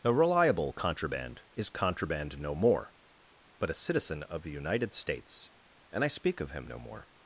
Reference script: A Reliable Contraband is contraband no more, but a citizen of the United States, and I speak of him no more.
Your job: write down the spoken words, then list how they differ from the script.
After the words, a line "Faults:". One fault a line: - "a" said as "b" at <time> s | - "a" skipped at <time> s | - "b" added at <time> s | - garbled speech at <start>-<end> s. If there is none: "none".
A Reliable Contraband is contraband no more, but a citizen of the United States, and I speak of him no more.
Faults:
none